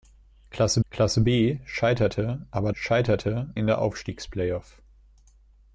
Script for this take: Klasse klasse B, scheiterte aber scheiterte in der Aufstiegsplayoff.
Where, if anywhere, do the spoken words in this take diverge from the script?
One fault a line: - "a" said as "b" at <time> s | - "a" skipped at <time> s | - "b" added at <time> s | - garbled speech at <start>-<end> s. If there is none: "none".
none